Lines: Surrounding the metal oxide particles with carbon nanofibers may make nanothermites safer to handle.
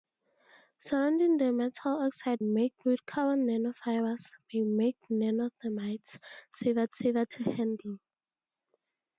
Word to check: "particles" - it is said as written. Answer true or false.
false